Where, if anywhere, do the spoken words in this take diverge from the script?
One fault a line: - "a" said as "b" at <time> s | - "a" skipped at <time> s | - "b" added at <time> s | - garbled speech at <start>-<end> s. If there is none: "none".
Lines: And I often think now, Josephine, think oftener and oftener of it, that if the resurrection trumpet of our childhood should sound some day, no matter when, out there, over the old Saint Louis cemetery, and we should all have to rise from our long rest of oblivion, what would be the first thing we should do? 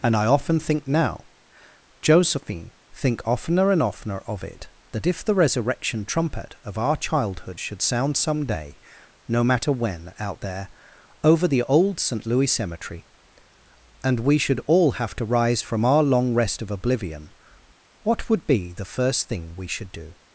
none